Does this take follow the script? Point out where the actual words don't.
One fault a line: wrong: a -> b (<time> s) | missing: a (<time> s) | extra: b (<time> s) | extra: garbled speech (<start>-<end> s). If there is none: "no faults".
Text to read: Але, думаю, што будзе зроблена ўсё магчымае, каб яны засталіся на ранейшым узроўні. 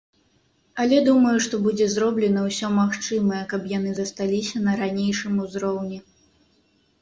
no faults